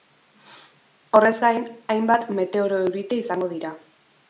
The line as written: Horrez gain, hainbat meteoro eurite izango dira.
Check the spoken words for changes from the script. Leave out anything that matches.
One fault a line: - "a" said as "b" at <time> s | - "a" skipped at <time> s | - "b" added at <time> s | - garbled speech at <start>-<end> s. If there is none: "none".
none